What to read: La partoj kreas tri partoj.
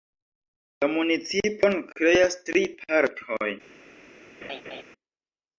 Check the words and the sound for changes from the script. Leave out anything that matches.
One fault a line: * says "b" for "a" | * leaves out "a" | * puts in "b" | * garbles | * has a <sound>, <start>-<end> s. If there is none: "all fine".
* says "municipon" for "partoj"
* has a laugh, 4.4-4.8 s